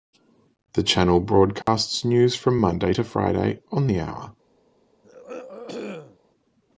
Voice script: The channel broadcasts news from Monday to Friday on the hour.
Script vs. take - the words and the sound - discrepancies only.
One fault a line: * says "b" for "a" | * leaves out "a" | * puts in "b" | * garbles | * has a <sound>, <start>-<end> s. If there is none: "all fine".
* has a dropout, 1.6-1.7 s
* has a throat clearing, 5.0-6.2 s